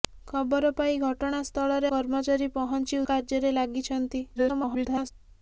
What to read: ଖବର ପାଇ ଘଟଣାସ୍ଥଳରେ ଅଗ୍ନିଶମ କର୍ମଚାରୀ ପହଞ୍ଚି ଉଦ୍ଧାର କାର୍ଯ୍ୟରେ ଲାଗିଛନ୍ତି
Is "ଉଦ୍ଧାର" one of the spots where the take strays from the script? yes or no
yes